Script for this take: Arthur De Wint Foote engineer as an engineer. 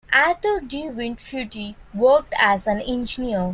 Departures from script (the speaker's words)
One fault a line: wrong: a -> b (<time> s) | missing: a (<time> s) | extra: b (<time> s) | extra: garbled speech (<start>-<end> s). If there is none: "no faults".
wrong: engineer -> worked (1.9 s)